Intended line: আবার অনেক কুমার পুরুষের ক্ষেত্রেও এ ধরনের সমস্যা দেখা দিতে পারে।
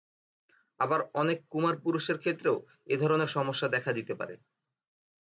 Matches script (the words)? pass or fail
pass